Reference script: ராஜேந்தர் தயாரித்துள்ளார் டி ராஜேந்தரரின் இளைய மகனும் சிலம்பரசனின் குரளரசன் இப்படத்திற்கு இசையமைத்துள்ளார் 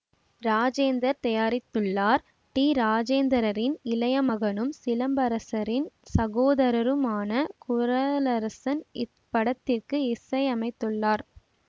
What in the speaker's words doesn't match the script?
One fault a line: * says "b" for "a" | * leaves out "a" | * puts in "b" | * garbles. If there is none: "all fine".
* puts in "சகோதரருமான"